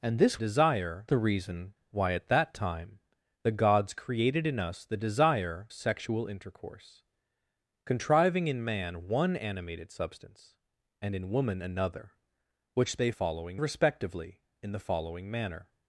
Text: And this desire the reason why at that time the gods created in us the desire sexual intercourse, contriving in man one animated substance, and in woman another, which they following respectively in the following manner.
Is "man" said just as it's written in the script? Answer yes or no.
yes